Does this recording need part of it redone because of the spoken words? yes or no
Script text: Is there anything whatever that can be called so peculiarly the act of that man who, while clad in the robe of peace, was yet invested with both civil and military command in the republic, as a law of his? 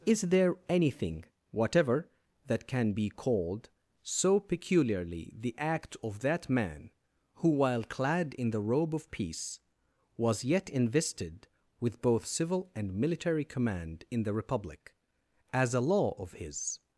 no